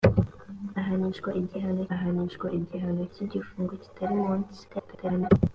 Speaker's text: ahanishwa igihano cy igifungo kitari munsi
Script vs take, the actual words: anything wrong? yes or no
yes